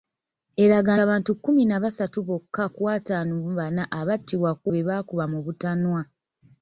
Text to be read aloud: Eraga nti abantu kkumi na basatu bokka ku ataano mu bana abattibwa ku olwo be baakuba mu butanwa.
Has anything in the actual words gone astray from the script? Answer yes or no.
yes